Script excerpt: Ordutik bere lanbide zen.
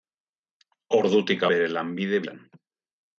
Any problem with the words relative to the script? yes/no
no